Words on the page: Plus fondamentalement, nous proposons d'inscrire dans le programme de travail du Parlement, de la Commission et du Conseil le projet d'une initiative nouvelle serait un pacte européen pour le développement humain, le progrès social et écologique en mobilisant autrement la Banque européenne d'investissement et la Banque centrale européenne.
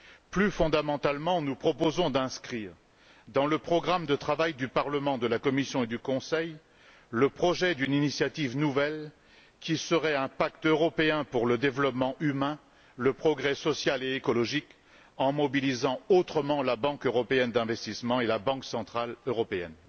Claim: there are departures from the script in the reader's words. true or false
true